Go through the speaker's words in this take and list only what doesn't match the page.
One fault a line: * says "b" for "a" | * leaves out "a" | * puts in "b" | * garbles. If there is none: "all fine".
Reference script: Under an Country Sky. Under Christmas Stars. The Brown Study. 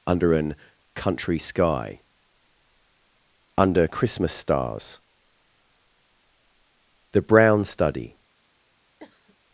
all fine